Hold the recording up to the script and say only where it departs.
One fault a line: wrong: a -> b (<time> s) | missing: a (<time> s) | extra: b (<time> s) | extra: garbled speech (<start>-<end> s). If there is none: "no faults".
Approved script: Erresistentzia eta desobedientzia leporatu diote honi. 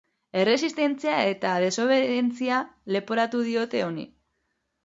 no faults